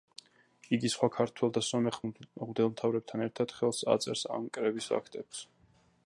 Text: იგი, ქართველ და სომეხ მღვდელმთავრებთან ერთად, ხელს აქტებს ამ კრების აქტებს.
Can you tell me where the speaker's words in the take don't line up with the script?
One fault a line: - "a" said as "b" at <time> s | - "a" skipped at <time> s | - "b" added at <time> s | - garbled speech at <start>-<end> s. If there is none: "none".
- "სხვა" added at 0.9 s
- "აქტებს" said as "აწერს" at 3.9 s